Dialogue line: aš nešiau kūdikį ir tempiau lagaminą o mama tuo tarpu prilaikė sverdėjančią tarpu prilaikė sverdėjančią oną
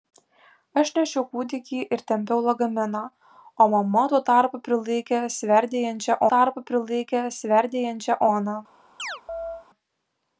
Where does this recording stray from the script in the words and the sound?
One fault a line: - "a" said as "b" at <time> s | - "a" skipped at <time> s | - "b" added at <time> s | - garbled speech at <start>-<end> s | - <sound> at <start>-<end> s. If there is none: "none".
- chirp at 9.0-9.7 s